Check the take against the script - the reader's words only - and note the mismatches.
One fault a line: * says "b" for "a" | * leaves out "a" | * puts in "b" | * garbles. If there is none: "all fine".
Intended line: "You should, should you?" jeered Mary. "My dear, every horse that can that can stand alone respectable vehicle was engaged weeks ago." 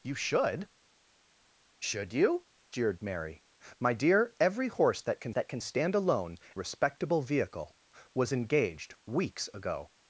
all fine